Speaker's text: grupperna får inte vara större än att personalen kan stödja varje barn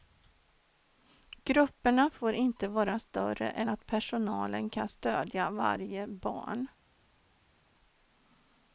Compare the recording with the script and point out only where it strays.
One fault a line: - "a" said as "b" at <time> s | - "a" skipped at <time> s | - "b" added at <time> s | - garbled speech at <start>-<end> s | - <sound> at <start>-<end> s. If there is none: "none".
none